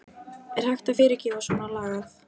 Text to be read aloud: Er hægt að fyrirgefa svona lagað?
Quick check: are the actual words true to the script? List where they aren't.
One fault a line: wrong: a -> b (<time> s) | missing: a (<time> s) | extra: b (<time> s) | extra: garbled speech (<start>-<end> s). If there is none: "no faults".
no faults